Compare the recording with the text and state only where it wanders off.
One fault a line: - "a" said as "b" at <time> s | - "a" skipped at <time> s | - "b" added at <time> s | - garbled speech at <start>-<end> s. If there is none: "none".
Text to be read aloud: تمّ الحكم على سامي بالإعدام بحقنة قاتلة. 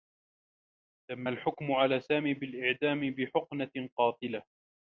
none